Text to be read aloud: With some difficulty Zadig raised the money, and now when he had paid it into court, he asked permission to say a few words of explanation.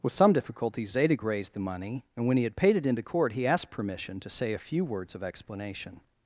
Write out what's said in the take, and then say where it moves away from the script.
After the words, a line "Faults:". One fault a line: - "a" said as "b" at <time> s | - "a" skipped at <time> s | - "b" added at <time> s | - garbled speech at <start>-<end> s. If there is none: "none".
With some difficulty Zadig raised the money, and when he had paid it into court, he asked permission to say a few words of explanation.
Faults:
- "now" skipped at 2.2 s